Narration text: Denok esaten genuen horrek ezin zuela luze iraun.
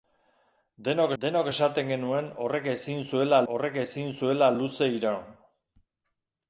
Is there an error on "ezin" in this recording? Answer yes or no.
no